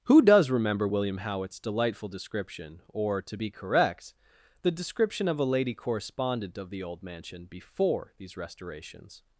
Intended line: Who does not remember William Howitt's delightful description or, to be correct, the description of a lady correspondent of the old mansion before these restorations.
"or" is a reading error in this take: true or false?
false